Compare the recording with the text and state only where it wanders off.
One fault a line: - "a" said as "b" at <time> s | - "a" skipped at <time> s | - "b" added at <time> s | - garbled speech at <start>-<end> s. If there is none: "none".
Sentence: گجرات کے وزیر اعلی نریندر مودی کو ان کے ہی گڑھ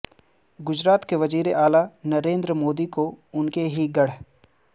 none